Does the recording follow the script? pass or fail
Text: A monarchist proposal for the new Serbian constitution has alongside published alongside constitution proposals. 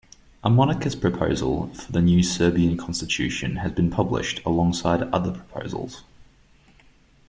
fail